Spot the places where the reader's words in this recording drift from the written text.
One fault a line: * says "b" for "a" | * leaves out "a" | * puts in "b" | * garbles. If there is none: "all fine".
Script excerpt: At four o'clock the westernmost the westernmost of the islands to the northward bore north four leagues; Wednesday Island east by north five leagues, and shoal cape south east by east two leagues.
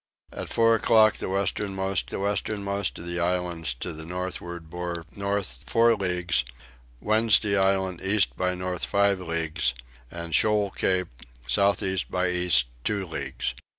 all fine